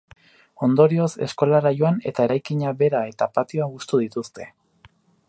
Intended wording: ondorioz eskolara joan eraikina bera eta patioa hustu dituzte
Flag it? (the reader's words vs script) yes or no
yes